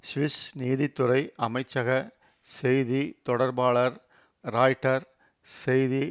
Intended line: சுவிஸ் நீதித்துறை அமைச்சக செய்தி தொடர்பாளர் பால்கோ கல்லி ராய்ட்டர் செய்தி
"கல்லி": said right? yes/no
no